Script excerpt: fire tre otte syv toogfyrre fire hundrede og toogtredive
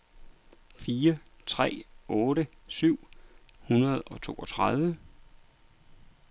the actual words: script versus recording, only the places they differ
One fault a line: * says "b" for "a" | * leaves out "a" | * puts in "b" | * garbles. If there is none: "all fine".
* leaves out "toogfyrre fire"